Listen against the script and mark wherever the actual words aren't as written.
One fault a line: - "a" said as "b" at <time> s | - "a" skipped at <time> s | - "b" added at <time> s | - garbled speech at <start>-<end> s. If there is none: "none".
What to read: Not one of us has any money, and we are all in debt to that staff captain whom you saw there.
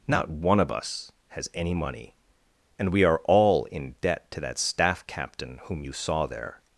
none